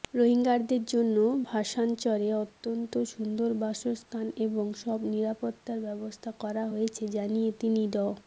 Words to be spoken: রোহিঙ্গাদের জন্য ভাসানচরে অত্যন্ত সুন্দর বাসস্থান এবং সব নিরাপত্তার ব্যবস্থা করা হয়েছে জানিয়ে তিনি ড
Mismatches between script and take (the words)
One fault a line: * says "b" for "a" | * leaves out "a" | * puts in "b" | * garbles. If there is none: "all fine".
all fine